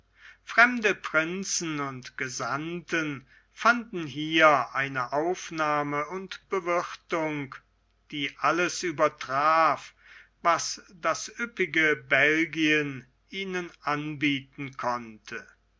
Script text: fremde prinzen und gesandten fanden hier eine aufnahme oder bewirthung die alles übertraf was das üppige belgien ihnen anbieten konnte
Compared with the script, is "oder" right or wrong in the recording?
wrong